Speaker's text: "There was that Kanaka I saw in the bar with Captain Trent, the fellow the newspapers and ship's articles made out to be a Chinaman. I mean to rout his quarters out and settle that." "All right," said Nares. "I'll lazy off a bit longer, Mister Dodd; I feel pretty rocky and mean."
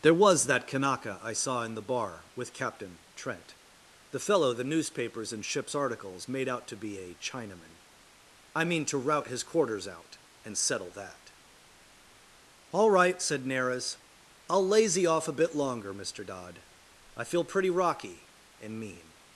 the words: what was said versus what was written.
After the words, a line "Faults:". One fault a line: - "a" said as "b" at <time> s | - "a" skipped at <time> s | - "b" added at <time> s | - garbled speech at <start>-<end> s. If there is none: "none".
"There was that Kanaka I saw in the bar with Captain Trent, the fellow the newspapers and ship's articles made out to be a Chinaman. I mean to rout his quarters out and settle that." "All right," said Nares. "I'll lazy off a bit longer, Mister Dodd; I feel pretty rocky and mean."
Faults:
none